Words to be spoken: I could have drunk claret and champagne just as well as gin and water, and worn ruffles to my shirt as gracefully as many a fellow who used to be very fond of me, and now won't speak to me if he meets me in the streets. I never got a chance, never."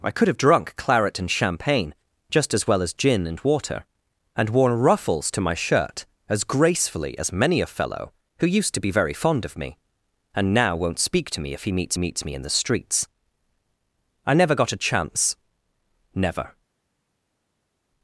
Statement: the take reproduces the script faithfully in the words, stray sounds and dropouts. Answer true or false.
false